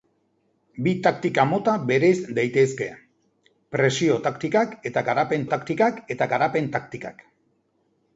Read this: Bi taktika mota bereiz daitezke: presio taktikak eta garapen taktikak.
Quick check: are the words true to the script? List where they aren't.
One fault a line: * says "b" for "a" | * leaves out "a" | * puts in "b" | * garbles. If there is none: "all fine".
* puts in "eta garapen taktikak"